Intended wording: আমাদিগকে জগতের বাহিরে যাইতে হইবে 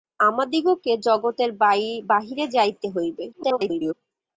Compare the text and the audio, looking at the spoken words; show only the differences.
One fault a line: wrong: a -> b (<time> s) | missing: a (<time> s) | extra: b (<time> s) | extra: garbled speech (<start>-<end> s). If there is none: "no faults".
extra: garbled speech (3.3-3.9 s)